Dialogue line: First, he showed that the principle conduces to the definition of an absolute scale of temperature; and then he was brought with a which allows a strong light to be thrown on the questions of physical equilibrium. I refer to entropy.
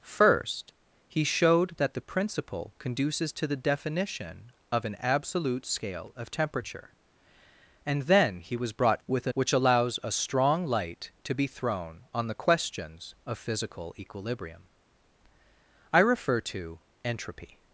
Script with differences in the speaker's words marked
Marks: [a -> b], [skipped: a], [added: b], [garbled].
First, he showed that the principle conduces to the definition of an absolute scale of temperature; and then he was brought with a which allows a strong light to be thrown on the questions of physical equilibrium. I refer to entropy.